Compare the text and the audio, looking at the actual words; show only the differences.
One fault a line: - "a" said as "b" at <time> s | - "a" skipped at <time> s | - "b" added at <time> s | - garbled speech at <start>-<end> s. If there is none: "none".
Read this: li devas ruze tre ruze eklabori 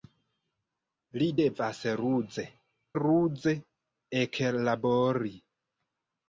- "tre" skipped at 2.4 s